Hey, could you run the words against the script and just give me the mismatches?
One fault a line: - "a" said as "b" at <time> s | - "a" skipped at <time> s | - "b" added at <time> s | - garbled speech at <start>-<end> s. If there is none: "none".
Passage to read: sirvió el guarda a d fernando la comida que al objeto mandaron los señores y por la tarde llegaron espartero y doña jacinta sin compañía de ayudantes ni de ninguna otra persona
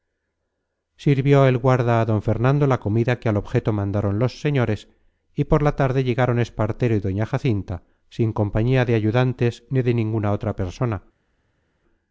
none